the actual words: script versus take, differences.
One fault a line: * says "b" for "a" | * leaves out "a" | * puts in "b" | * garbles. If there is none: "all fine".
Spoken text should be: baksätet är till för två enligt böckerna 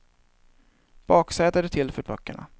* leaves out "två enligt"